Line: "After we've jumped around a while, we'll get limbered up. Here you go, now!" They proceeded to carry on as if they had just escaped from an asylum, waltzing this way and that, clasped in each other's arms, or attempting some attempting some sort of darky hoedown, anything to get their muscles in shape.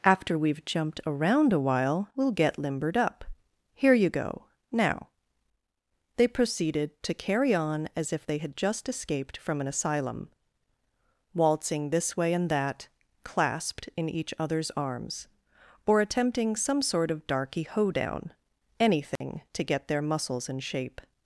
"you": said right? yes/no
yes